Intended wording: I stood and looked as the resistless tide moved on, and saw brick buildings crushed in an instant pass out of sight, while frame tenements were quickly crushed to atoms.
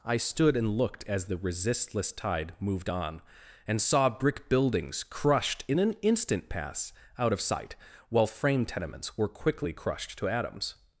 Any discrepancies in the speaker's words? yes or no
no